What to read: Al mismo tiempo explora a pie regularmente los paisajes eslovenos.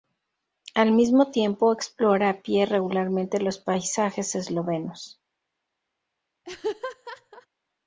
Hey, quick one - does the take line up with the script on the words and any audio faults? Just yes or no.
no